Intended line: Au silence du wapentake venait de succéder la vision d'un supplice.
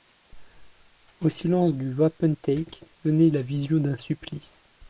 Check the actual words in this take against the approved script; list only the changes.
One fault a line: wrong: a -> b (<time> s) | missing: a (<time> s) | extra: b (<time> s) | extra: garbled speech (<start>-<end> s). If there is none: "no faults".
missing: de succéder (3.3 s)